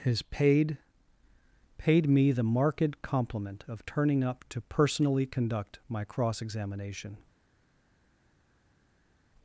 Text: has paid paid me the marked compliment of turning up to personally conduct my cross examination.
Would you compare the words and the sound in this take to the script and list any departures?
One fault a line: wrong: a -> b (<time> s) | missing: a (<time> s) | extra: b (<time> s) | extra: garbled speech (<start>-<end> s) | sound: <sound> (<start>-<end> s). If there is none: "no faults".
no faults